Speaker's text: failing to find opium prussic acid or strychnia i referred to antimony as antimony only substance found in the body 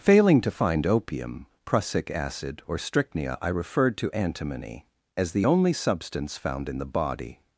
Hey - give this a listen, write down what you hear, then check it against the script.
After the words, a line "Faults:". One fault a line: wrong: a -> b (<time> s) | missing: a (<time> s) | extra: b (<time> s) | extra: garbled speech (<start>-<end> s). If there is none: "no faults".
failing to find opium prussic acid or strychnia i referred to antimony as the only substance found in the body
Faults:
wrong: antimony -> the (5.3 s)